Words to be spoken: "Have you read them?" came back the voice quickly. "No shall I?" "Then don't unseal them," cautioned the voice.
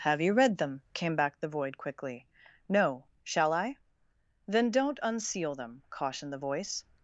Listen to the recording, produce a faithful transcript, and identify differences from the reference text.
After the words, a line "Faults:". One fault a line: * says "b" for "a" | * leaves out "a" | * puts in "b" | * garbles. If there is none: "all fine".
"Have you read them?" came back the void quickly. "No shall I?" "Then don't unseal them," cautioned the voice.
Faults:
* says "void" for "voice"